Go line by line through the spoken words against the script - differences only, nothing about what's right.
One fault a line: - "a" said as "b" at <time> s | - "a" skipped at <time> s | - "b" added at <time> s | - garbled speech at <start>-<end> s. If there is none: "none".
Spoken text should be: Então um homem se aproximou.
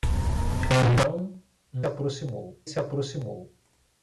- "homem" said as "aproximou" at 1.9 s